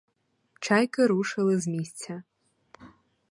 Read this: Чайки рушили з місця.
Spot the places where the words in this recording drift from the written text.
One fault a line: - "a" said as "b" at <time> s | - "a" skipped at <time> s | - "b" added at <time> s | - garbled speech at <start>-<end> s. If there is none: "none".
none